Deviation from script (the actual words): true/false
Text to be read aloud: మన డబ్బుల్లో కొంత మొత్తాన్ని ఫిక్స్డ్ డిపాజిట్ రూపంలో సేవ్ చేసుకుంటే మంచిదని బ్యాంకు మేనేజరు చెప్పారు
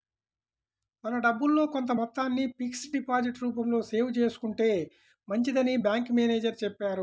false